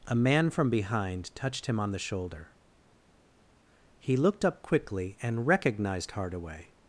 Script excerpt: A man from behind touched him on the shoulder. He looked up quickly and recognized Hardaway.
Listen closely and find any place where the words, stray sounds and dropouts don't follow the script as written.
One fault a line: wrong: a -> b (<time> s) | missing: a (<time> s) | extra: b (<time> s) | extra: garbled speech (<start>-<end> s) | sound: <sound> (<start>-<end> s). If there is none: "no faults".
no faults